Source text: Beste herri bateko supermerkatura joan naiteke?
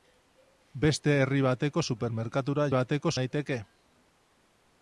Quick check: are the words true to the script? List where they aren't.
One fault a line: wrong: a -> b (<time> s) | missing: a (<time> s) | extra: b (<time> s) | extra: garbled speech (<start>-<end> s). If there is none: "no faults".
wrong: joan -> bateko (2.8 s)